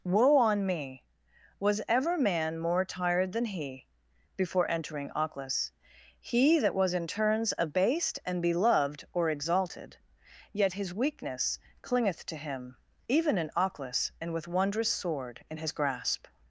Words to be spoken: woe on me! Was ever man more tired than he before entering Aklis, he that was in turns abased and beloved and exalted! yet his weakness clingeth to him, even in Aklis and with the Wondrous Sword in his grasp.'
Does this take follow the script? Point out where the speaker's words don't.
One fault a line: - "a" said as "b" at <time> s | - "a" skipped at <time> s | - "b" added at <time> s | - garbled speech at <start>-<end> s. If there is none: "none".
- "and" said as "or" at 9.1 s
- "the" skipped at 14.5 s